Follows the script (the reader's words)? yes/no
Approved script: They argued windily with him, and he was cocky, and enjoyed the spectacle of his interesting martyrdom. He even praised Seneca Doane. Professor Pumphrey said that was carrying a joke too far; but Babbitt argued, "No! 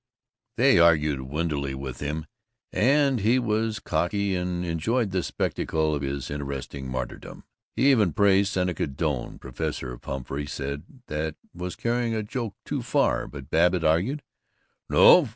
yes